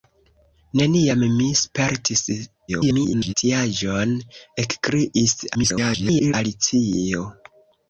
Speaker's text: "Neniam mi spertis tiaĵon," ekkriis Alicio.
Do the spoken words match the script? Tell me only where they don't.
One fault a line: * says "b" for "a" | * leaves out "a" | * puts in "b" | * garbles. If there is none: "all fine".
* garbles
* garbles